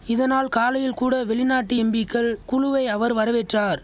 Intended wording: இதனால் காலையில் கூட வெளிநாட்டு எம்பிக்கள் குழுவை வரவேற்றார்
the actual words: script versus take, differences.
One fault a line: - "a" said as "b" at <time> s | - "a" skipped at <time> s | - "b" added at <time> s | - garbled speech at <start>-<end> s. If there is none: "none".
- "அவர்" added at 2.9 s